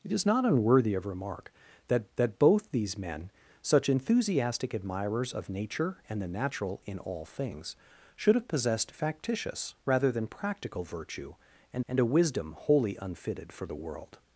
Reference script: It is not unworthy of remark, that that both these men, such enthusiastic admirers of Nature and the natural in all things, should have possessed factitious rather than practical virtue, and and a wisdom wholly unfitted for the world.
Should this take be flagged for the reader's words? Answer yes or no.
no